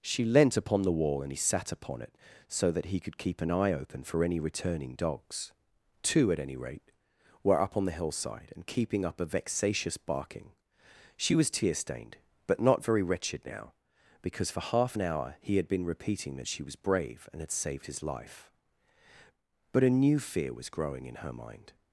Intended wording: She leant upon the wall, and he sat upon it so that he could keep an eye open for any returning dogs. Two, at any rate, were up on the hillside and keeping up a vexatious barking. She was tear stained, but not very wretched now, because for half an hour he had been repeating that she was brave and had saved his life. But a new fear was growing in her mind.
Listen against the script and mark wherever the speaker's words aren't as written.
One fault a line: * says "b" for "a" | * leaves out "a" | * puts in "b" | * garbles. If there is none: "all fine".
all fine